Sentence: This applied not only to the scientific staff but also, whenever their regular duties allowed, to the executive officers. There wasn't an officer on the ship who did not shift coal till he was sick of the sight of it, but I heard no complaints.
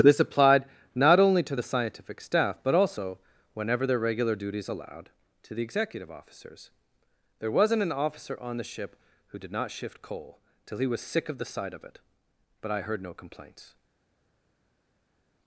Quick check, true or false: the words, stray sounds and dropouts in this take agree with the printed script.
true